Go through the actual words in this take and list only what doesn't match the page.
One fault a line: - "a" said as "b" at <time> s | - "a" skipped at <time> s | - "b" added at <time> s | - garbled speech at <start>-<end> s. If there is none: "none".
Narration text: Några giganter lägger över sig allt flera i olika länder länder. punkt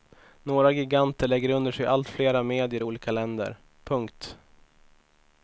- "över" said as "under" at 1.5 s
- "medier" added at 2.4 s
- "länder" skipped at 3.6 s